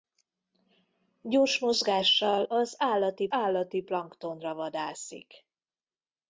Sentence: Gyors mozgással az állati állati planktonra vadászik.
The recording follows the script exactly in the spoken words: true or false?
true